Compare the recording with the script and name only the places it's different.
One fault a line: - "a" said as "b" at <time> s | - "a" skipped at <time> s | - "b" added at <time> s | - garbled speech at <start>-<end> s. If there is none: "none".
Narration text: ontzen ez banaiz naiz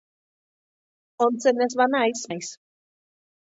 none